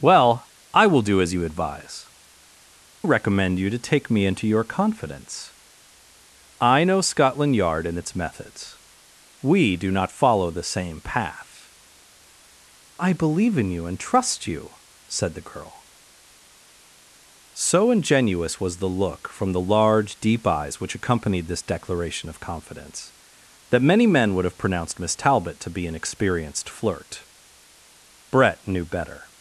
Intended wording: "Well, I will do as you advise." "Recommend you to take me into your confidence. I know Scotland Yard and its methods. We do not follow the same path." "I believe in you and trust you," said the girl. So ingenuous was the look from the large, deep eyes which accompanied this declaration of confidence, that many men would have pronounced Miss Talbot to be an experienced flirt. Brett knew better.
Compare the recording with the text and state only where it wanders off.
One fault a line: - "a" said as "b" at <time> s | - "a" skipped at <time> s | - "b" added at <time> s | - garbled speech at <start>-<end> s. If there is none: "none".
none